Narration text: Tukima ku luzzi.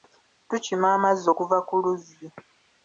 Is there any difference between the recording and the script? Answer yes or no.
yes